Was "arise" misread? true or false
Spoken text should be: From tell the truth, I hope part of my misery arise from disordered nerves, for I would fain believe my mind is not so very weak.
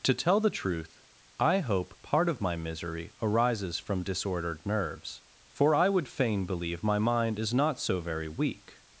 true